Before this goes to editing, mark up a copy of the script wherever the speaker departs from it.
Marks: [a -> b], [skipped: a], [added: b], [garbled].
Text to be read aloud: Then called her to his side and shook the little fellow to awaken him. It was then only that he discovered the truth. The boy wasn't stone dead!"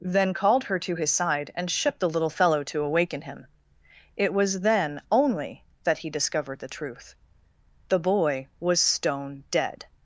Then called her to his side and shook the little fellow to awaken him. It was then only that he discovered the truth. The boy [wasn't -> was] stone dead!"